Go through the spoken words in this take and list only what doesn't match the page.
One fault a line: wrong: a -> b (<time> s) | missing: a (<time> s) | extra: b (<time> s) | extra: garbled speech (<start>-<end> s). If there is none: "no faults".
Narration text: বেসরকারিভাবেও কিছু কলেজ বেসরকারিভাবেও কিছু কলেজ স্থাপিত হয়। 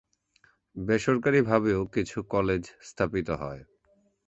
missing: বেসরকারিভাবেও কিছু কলেজ (2.6 s)